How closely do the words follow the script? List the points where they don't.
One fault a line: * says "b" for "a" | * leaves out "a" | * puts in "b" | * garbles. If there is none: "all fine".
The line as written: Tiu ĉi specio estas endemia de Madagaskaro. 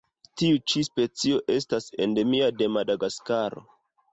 all fine